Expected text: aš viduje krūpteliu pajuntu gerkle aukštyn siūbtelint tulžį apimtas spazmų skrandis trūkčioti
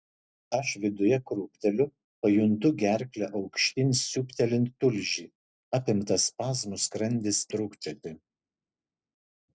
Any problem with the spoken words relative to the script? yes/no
no